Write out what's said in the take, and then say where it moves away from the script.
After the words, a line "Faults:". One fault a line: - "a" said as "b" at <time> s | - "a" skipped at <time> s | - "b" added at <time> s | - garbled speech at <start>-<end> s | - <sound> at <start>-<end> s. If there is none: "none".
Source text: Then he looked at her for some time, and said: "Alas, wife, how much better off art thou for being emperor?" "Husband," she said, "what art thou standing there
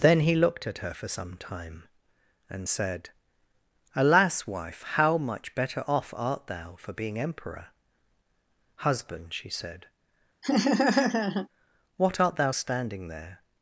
Then he looked at her for some time, and said: "Alas, wife, how much better off art thou for being emperor?" "Husband," she said, "what art thou standing there
Faults:
- laugh at 10.4-11.5 s